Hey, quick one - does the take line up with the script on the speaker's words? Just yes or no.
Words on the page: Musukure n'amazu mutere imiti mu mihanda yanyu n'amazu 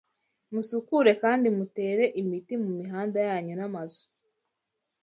no